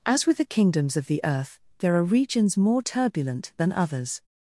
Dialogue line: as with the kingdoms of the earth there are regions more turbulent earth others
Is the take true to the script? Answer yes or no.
no